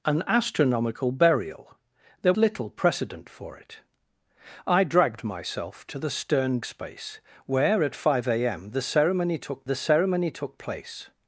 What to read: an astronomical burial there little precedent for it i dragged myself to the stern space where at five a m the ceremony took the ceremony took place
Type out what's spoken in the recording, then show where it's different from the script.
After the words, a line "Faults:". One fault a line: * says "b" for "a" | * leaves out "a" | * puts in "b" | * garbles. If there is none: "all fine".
an astronomical burial there little precedent for it i dragged myself to the stern space where at five a m the ceremony took the ceremony took place
Faults:
all fine